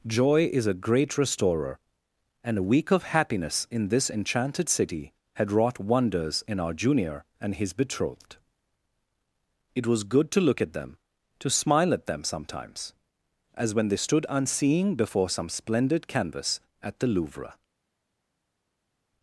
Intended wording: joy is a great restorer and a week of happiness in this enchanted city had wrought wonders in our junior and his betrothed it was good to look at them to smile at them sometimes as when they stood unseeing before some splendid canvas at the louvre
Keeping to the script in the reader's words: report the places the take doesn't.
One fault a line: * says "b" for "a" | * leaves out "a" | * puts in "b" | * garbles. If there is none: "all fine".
all fine